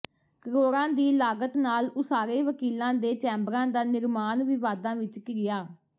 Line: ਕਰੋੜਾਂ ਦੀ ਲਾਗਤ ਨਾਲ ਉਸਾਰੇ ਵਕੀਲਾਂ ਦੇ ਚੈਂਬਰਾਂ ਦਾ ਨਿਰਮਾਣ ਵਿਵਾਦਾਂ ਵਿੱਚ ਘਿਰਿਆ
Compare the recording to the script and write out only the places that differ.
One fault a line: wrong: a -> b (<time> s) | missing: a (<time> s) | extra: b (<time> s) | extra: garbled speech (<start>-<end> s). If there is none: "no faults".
no faults